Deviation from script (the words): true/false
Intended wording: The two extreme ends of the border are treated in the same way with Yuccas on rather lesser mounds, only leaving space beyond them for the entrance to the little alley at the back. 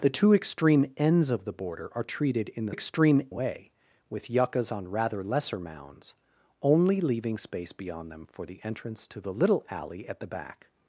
true